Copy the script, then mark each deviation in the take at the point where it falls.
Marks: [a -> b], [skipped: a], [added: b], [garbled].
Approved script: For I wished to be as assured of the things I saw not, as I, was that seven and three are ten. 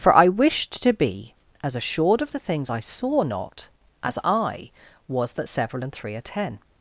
For I wished to be as assured of the things I saw not, as I, was that [seven -> several] and three are ten.